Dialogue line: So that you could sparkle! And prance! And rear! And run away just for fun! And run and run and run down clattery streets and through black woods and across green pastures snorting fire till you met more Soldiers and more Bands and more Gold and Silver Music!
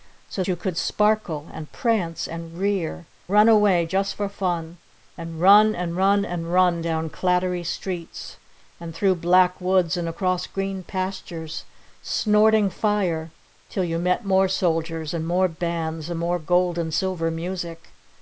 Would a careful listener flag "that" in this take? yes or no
yes